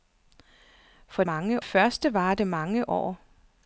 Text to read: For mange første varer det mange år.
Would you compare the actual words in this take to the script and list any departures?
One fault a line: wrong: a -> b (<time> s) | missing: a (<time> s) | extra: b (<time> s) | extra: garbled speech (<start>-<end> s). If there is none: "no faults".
no faults